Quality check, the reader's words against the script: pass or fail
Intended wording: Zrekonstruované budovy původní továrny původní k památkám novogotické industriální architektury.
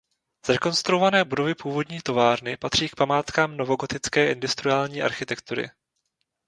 fail